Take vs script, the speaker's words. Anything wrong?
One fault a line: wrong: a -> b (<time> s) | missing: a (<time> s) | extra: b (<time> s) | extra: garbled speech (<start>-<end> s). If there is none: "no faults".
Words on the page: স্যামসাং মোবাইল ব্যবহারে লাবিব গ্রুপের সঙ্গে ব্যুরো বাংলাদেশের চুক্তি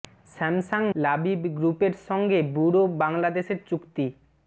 missing: মোবাইল ব্যবহারে (0.8 s)